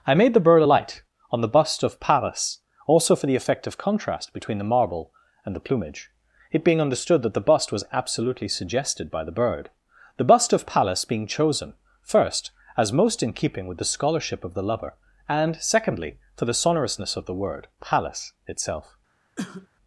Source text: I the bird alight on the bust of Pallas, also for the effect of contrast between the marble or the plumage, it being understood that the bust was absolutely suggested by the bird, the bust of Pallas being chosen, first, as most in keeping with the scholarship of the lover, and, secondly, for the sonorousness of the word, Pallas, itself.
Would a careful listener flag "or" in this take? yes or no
yes